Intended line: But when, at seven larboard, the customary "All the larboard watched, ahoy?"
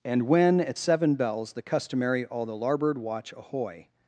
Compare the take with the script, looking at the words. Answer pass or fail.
fail